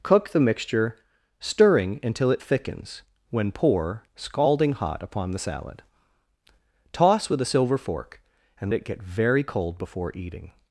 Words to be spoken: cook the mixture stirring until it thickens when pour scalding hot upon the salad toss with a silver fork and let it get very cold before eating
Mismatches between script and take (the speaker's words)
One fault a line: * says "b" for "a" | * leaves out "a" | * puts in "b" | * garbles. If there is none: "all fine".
* leaves out "let"